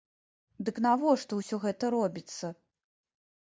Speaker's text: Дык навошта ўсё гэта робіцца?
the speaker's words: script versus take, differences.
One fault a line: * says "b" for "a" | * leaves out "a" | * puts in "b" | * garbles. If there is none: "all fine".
all fine